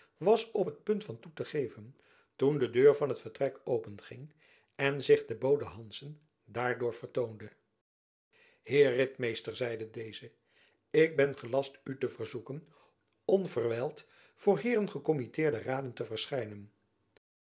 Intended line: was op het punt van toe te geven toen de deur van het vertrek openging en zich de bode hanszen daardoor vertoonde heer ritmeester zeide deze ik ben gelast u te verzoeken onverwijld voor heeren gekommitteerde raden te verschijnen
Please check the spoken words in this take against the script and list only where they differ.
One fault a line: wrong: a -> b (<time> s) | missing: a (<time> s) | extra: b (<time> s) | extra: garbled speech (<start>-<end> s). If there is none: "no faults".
no faults